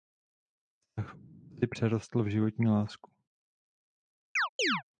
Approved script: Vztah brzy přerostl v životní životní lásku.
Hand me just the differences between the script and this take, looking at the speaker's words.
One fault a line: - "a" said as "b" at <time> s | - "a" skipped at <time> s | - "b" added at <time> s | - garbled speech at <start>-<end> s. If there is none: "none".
- "životní" skipped at 2.7 s